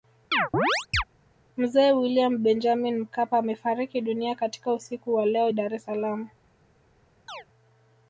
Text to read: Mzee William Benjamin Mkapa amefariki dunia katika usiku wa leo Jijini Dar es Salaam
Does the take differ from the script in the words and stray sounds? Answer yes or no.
yes